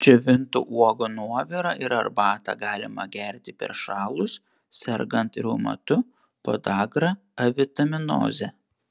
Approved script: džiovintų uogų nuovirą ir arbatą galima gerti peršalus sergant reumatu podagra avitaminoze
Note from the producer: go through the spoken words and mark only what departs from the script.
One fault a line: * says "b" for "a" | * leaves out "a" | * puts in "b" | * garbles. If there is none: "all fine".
all fine